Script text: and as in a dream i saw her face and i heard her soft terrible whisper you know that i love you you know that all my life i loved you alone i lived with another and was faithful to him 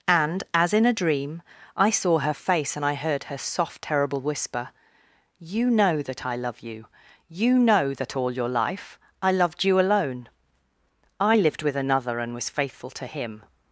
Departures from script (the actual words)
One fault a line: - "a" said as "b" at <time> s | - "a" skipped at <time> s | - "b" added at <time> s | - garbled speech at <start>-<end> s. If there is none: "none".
- "my" said as "your" at 8.3 s